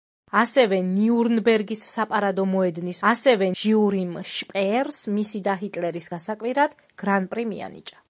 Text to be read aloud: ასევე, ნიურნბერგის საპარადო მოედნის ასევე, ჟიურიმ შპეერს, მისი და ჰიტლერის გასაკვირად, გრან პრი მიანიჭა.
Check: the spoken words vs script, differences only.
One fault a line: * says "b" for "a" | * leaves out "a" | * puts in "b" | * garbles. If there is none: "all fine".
all fine